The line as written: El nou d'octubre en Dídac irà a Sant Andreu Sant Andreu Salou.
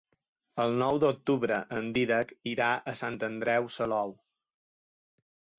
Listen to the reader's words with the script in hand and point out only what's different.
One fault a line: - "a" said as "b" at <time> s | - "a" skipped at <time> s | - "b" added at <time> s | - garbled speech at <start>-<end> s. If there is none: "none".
- "Sant Andreu" skipped at 3.7 s